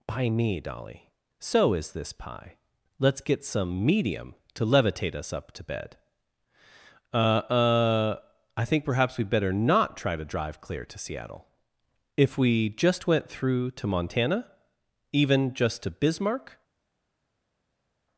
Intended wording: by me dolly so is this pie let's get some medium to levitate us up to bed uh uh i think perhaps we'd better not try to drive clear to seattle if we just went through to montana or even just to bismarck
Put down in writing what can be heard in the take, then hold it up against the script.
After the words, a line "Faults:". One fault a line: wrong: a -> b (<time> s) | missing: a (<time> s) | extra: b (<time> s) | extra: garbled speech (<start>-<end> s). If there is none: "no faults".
by me dolly so is this pie let's get some medium to levitate us up to bed uh uh i think perhaps we'd better not try to drive clear to seattle if we just went through to montana even just to bismarck
Faults:
missing: or (14.5 s)